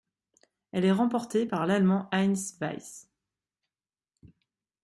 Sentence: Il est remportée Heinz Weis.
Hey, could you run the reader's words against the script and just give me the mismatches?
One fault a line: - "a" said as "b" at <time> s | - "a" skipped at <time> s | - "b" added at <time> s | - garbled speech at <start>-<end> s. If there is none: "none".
- "Il" said as "Elle" at 0.7 s
- "par l'Allemand" added at 1.4 s